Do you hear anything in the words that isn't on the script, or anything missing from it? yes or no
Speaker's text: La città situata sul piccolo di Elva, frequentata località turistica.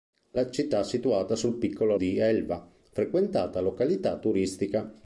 no